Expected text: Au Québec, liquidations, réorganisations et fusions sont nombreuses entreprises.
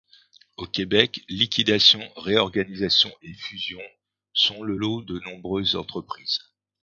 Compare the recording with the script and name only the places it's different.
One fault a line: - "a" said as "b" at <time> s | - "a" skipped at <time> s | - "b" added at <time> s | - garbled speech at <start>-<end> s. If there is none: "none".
- "le lot de" added at 4.6 s